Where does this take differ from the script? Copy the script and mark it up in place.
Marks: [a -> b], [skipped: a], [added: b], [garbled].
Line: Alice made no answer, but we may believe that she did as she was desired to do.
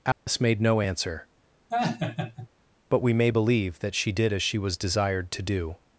Alice made no answer, but we may believe that she did as she was desired to do.